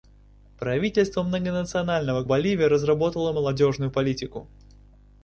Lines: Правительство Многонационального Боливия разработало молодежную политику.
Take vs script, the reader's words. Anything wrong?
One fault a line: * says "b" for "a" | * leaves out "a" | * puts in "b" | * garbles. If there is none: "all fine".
all fine